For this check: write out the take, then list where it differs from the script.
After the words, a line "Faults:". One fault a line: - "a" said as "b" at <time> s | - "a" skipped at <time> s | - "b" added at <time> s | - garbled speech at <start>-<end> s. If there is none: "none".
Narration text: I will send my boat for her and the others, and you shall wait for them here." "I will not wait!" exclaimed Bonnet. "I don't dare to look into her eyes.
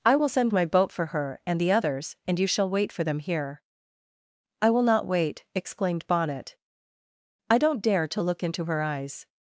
I will send my boat for her and the others, and you shall wait for them here." "I will not wait!" exclaimed Bonnet. "I don't dare to look into her eyes.
Faults:
none